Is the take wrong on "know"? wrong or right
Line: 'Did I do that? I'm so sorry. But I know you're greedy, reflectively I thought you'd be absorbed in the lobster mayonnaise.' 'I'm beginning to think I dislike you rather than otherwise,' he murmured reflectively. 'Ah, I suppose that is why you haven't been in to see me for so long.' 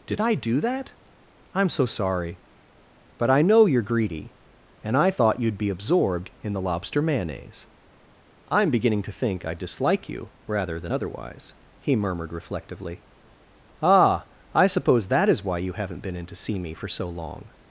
right